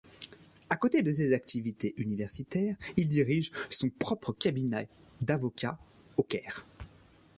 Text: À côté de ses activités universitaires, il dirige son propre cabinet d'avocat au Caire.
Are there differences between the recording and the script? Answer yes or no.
no